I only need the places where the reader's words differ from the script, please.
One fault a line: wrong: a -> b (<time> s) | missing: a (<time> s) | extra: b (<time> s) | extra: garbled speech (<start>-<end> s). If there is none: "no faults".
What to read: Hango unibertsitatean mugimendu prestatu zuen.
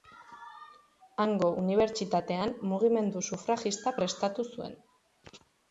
extra: sufragista (3.3 s)